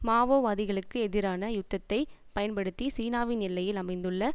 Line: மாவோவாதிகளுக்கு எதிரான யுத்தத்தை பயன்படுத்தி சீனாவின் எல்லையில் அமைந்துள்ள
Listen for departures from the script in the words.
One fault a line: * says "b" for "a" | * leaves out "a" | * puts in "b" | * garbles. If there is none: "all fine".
all fine